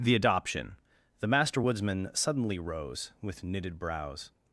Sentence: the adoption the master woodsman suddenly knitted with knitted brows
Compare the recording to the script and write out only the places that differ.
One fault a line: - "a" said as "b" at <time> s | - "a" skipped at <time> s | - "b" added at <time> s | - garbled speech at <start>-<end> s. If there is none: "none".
- "knitted" said as "rose" at 2.6 s